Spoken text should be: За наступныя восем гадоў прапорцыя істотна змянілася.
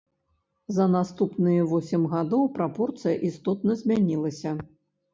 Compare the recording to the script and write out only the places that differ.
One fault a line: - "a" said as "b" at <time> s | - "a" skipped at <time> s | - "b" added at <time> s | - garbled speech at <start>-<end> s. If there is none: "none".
none